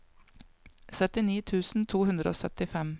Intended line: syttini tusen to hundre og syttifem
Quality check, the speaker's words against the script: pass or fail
pass